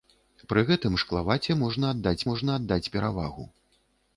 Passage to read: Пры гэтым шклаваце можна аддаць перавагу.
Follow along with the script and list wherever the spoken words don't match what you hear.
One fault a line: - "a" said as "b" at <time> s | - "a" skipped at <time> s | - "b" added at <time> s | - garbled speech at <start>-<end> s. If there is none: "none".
- "можна аддаць" added at 2.3 s